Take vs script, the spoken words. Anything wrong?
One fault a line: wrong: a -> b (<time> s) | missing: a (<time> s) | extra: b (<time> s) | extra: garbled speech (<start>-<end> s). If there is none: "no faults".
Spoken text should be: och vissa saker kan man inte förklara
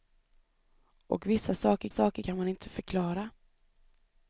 extra: saker (1.9 s)